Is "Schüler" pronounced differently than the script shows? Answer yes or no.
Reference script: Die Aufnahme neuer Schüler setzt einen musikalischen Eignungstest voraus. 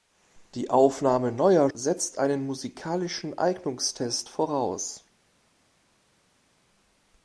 yes